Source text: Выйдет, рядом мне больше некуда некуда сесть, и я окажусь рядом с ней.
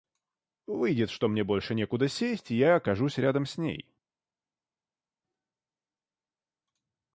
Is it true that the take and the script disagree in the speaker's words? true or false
true